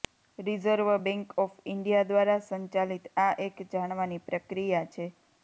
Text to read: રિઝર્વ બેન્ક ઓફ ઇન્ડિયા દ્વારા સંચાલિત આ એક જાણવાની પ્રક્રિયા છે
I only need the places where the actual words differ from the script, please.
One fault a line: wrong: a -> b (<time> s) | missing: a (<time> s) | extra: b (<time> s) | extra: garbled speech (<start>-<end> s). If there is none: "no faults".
no faults